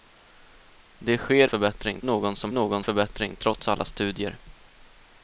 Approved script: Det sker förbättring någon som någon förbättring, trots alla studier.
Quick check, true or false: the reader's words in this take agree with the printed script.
true